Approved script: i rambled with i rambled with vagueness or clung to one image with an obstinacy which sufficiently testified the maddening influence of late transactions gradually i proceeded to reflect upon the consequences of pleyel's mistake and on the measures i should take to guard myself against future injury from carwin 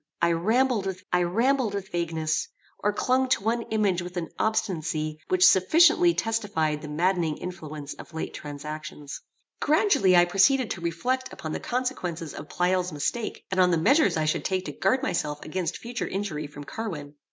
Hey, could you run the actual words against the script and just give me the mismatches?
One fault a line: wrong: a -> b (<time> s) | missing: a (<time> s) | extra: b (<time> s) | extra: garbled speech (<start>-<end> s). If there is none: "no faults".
no faults